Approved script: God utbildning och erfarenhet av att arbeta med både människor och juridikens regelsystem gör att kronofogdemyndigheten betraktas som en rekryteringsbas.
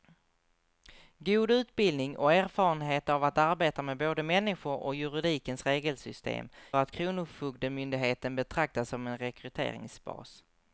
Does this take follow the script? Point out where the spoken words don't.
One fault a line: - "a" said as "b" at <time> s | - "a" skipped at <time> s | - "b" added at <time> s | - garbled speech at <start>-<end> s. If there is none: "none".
- "gör" skipped at 6.5 s